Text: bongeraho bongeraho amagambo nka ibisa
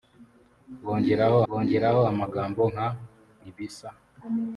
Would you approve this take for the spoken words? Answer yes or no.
yes